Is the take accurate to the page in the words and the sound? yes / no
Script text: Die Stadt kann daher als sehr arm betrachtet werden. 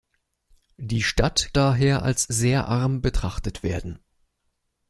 no